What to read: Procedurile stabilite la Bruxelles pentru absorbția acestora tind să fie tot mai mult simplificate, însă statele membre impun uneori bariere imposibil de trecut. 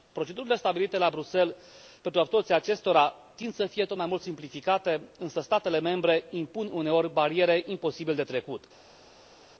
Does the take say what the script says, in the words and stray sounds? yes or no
yes